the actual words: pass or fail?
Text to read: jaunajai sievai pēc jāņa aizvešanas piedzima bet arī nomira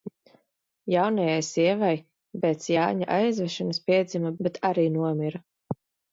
pass